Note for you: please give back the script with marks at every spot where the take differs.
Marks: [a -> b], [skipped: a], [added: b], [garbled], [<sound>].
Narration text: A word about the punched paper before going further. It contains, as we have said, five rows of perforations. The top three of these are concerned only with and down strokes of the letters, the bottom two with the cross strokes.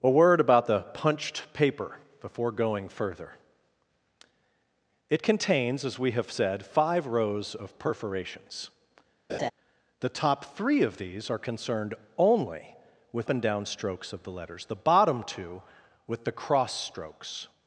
A word about the punched paper before going further. It contains, as we have said, five rows of perforations. [laugh] The top three of these are concerned only with and down strokes of the letters, the bottom two with the cross strokes.